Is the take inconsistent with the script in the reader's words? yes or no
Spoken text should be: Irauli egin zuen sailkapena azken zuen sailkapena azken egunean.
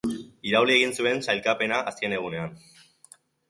yes